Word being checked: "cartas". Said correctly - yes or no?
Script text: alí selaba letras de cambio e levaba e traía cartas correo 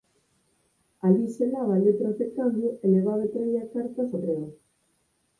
yes